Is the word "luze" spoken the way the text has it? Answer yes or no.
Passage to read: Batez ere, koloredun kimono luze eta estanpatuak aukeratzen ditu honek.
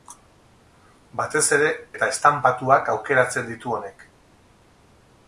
no